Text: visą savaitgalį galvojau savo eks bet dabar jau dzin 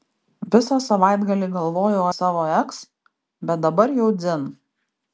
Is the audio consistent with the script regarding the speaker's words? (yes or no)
yes